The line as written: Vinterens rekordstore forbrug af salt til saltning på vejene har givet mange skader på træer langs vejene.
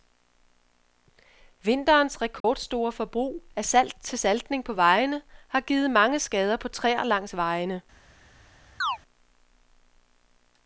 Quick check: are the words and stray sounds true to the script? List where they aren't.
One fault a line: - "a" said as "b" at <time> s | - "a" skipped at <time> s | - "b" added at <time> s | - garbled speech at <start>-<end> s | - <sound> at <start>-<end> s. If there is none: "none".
- dropout at 2.4-2.4 s
- chirp at 8.8-9.0 s